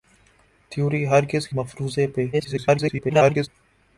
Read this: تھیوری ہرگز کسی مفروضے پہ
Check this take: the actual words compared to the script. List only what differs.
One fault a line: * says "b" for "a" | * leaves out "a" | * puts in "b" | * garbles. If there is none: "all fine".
* leaves out "کسی"
* garbles